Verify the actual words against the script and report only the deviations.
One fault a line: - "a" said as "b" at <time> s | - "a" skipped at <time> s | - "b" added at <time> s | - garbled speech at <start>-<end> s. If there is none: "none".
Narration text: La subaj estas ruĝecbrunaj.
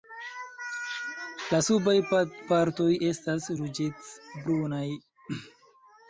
- "partoj" added at 2.5 s